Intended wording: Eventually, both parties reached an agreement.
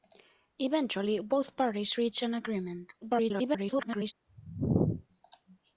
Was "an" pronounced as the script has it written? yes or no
yes